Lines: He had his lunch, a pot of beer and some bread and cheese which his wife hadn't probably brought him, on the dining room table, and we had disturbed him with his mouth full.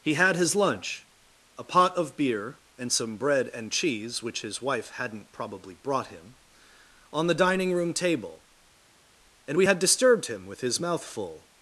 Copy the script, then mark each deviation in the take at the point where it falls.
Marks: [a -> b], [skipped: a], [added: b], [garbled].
He had his lunch, a pot of beer and some bread and cheese which his wife hadn't probably brought him, on the dining room table, and we had disturbed him with his mouth full.